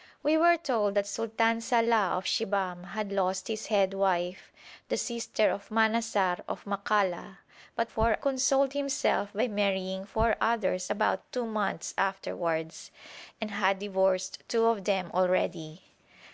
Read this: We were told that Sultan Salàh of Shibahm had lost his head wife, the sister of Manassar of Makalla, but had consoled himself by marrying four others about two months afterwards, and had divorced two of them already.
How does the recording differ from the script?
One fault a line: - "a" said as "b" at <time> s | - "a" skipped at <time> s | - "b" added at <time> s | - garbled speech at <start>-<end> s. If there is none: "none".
- "had" said as "four" at 7.9 s